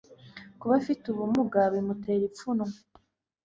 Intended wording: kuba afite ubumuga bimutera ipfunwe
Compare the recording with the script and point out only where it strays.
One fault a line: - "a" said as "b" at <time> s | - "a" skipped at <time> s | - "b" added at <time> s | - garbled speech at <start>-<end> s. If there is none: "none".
none